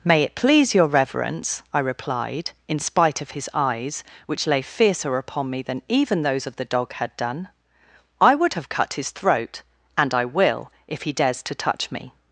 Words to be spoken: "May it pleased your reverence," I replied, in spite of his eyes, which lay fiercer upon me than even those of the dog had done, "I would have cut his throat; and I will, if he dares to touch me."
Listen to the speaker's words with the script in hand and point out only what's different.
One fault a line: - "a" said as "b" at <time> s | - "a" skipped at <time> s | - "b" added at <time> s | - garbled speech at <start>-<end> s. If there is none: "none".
- "pleased" said as "please" at 0.3 s